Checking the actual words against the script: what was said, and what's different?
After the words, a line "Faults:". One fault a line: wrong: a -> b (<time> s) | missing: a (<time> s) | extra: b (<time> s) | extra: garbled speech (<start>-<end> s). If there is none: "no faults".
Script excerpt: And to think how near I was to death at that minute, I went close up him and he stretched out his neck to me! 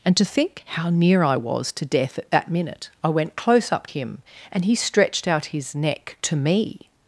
And to think how near I was to death at that minute, I went close up him and he stretched out his neck to me!
Faults:
no faults